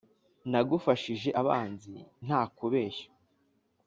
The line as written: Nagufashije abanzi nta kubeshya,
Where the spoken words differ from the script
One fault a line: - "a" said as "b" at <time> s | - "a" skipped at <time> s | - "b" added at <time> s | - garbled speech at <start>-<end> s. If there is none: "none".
none